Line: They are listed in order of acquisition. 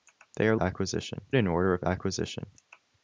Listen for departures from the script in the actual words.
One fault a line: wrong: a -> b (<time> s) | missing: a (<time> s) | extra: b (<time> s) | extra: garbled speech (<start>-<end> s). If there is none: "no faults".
wrong: listed -> acquisition (0.6 s)